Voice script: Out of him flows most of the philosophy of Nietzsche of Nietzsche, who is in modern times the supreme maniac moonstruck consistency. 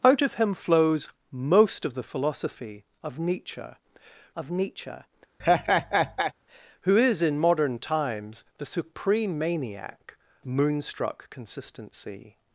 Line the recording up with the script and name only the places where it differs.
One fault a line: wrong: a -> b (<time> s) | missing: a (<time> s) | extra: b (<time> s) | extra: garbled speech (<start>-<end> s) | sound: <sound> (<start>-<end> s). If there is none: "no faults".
sound: laugh (5.4-6.3 s)